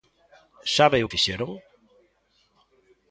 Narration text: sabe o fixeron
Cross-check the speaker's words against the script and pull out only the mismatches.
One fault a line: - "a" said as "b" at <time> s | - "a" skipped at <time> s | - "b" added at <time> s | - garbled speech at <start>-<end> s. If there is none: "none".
none